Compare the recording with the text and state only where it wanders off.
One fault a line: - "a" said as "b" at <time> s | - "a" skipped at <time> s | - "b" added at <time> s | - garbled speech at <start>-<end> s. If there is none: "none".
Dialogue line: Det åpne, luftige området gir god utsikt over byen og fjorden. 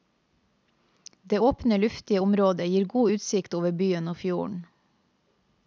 none